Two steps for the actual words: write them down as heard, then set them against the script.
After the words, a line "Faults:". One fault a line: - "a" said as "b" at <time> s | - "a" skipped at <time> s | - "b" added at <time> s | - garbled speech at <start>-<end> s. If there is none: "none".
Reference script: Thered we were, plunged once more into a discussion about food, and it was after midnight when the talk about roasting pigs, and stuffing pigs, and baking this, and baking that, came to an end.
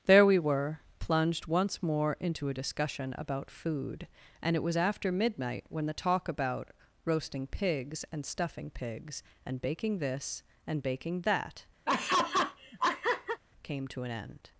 There we were, plunged once more into a discussion about food, and it was after midnight when the talk about roasting pigs, and stuffing pigs, and baking this, and baking that, came to an end.
Faults:
- "Thered" said as "There" at 0.1 s